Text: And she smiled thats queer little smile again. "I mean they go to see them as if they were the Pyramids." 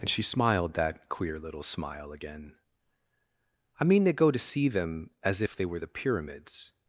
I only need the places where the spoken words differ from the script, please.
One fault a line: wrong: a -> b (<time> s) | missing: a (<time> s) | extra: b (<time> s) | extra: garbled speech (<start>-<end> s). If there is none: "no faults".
wrong: thats -> that (0.7 s)